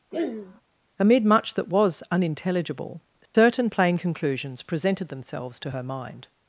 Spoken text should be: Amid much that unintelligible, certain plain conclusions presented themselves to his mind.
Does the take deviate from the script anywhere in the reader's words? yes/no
yes